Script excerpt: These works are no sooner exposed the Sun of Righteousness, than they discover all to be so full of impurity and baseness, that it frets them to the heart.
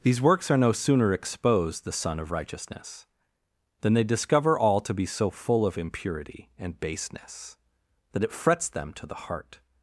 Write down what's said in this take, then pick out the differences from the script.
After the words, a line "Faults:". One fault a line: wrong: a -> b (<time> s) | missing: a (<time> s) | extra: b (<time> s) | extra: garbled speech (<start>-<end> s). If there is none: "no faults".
These works are no sooner exposed the Sun of Righteousness, than they discover all to be so full of impurity and baseness, that it frets them to the heart.
Faults:
no faults